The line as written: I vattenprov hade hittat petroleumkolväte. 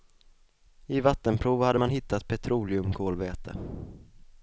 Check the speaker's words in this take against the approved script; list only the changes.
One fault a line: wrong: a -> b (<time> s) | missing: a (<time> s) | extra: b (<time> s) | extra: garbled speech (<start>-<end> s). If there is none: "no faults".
extra: man (1.8 s)